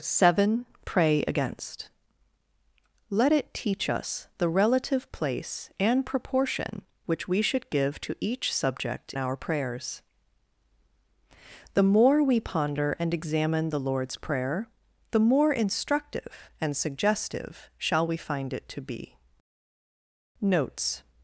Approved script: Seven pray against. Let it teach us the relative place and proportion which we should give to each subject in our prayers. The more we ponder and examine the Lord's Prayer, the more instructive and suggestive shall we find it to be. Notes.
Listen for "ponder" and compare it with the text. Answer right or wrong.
right